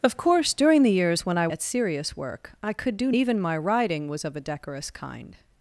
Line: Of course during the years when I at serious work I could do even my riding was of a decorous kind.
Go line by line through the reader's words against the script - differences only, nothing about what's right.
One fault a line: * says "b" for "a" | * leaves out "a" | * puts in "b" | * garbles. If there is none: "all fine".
all fine